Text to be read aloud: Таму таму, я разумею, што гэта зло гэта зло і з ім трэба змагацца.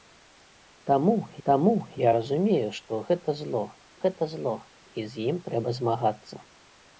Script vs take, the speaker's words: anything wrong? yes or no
no